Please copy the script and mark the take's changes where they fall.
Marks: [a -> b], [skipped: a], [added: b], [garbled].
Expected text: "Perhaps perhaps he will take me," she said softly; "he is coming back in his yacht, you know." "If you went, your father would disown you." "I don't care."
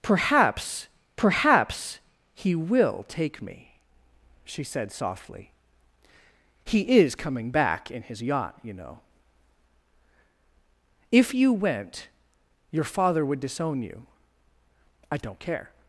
"Perhaps perhaps he will take me," she said softly; "he is coming back in his yacht, you know." "If you went, your father would disown you." "I don't care."